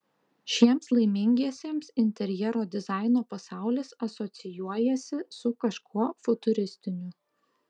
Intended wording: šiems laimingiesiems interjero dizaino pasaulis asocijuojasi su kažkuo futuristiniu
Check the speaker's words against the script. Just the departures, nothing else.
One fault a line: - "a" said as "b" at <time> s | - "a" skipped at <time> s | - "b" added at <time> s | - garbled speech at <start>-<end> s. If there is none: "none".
none